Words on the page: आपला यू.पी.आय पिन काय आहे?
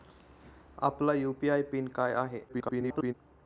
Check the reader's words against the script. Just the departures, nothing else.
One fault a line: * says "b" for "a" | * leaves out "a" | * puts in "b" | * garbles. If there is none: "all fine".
* garbles